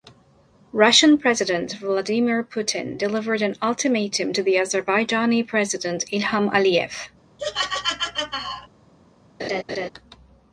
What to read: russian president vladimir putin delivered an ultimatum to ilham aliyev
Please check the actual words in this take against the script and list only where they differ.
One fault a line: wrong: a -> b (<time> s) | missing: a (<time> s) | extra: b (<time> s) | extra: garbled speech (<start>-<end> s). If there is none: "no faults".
extra: the azerbaijani president (4.4 s)